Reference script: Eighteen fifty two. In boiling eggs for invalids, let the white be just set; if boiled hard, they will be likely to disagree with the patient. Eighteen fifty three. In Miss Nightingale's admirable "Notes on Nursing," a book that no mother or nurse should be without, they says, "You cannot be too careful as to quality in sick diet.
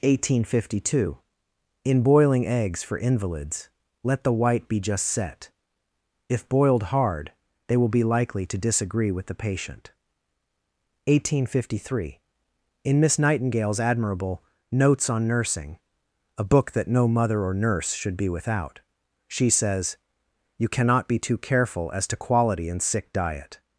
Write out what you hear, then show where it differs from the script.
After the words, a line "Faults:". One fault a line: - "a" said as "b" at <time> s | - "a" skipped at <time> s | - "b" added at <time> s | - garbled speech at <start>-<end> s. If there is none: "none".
Eighteen fifty two. In boiling eggs for invalids, let the white be just set; if boiled hard, they will be likely to disagree with the patient. Eighteen fifty three. In Miss Nightingale's admirable "Notes on Nursing," a book that no mother or nurse should be without, she says, "You cannot be too careful as to quality in sick diet.
Faults:
- "they" said as "she" at 19.3 s